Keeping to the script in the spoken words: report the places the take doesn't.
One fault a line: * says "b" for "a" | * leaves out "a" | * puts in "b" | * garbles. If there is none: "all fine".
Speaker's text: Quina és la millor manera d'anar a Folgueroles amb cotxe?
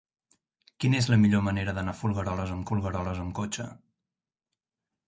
* puts in "Folgueroles amb"